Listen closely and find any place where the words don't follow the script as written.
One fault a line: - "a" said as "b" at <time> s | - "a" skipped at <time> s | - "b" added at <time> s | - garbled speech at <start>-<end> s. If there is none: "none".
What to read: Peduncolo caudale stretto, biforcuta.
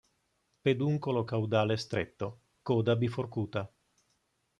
- "coda" added at 2.6 s